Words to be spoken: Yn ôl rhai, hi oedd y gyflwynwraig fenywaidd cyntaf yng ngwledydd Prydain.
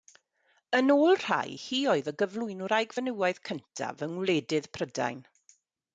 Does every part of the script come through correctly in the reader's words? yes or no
yes